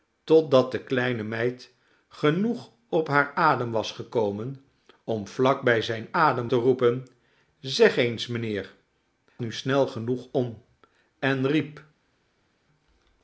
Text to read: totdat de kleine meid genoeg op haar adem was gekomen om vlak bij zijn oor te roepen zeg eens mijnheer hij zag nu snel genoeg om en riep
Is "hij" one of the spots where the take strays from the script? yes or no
yes